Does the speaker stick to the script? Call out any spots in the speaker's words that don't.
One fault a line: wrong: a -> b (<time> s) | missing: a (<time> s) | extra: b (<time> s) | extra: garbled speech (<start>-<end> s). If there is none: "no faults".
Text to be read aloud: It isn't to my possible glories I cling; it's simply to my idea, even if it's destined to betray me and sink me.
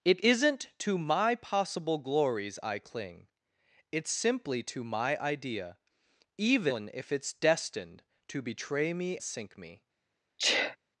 missing: and (9.2 s)